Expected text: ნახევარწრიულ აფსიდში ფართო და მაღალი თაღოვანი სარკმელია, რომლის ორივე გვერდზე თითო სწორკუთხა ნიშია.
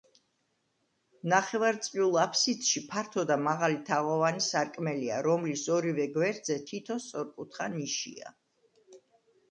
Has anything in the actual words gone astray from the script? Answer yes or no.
no